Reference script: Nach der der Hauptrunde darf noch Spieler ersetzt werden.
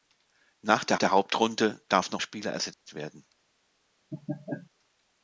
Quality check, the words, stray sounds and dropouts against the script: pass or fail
fail